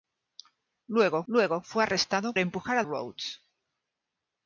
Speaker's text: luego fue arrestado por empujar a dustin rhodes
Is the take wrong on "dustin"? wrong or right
wrong